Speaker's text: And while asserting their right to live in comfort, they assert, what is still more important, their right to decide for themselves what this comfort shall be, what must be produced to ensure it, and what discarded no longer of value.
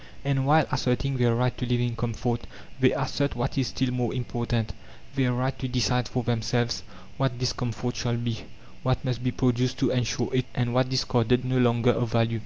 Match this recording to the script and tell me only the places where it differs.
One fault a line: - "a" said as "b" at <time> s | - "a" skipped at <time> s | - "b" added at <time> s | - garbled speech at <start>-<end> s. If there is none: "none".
none